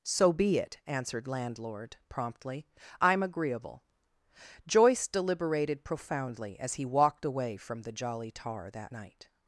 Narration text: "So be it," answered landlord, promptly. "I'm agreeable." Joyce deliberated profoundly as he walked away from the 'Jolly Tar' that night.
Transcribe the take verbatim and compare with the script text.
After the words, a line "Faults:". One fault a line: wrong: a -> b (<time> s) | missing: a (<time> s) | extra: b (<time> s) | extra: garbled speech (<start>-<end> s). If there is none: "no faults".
"So be it," answered landlord, promptly. "I'm agreeable." Joyce deliberated profoundly as he walked away from the 'Jolly Tar' that night.
Faults:
no faults